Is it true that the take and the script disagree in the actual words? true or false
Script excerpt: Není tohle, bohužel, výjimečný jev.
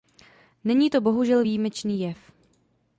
true